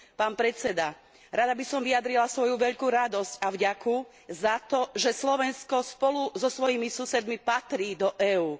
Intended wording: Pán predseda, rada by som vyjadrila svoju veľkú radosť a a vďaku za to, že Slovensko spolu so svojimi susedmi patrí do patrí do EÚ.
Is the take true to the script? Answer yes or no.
no